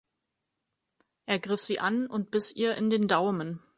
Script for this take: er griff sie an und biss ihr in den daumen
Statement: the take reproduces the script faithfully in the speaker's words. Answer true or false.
true